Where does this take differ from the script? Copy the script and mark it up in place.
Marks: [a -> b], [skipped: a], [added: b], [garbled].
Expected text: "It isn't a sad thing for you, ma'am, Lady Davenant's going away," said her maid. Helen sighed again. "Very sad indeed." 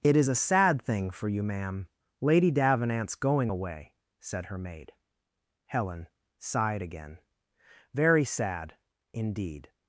"It [isn't -> is] a sad thing for you, ma'am, Lady Davenant's going away," said her maid. Helen sighed again. "Very sad indeed."